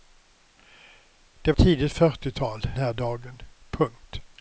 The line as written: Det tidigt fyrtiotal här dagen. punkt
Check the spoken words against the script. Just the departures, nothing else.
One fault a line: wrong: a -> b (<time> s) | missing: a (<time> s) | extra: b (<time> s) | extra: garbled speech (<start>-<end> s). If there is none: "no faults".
no faults